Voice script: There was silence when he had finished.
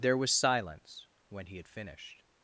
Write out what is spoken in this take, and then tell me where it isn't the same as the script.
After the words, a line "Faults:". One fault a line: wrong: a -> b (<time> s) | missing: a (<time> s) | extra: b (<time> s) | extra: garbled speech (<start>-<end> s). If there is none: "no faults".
There was silence when he had finished.
Faults:
no faults